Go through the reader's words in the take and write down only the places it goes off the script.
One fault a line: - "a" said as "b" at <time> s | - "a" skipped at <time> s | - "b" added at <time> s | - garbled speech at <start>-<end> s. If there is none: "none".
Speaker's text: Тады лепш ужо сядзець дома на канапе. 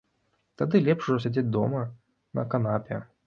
none